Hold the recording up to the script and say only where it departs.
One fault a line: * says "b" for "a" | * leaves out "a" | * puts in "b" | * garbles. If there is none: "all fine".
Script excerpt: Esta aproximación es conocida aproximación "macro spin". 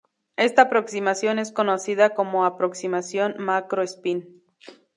* puts in "como"